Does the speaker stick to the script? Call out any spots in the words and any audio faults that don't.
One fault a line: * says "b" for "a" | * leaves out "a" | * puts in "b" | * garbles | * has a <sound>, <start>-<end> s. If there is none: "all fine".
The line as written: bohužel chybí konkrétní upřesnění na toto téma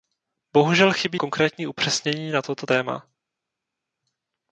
all fine